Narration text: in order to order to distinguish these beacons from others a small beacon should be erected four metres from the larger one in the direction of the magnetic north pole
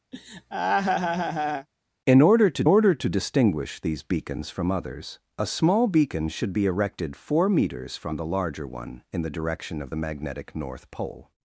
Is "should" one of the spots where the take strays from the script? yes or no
no